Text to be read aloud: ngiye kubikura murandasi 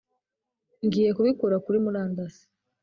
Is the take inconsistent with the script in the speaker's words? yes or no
yes